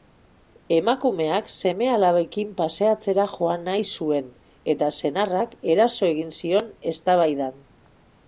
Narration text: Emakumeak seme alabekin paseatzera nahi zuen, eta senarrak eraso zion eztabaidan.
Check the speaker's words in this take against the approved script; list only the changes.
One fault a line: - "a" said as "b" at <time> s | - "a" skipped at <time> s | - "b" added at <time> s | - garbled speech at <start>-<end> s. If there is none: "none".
- "joan" added at 3.4 s
- "egin" added at 6.1 s